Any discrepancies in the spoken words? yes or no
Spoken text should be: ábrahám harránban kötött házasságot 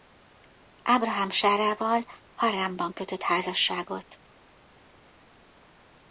yes